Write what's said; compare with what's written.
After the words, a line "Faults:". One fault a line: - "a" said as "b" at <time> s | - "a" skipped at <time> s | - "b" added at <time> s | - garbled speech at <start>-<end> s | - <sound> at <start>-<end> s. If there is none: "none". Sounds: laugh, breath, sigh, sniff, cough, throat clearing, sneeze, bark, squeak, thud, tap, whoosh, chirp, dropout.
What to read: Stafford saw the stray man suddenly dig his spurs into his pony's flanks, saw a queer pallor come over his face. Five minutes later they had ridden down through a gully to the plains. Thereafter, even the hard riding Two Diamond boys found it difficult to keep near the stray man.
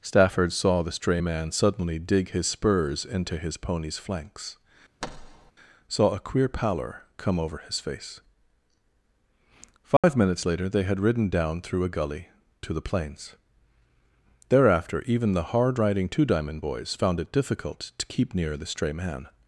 Stafford saw the stray man suddenly dig his spurs into his pony's flanks, saw a queer pallor come over his face. Five minutes later they had ridden down through a gully to the plains. Thereafter, even the hard riding Two Diamond boys found it difficult to keep near the stray man.
Faults:
- thud at 5.0-5.5 s
- dropout at 10.0-10.0 s